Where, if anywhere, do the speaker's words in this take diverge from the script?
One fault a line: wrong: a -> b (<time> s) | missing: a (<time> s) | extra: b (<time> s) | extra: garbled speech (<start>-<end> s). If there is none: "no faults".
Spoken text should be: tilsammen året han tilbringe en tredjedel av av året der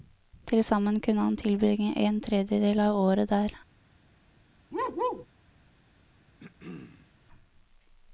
wrong: året -> kunne (1.0 s)
missing: av (3.0 s)